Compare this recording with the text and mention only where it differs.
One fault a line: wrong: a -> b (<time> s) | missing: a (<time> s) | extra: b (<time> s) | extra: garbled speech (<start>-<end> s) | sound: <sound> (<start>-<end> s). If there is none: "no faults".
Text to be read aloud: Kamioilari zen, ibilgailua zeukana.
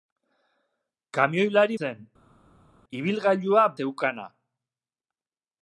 no faults